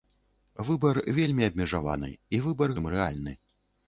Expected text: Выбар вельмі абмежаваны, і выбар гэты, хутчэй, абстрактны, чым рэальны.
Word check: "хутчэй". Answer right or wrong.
wrong